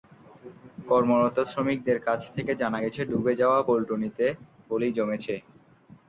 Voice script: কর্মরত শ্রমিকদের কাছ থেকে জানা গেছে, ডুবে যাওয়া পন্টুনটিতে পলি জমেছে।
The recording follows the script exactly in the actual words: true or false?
true